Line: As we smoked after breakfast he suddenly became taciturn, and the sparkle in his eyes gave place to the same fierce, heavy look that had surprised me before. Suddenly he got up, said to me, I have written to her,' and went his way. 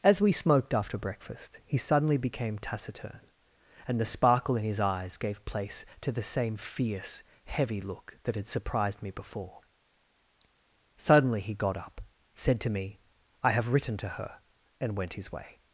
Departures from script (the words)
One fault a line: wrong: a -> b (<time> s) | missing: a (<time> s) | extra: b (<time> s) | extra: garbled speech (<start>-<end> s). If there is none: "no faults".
no faults